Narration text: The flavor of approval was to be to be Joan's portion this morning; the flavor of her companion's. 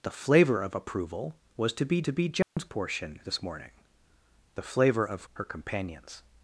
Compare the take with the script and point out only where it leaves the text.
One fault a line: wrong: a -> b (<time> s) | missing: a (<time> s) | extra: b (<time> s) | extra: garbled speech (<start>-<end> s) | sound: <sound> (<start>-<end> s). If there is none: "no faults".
sound: dropout (2.4-2.6 s)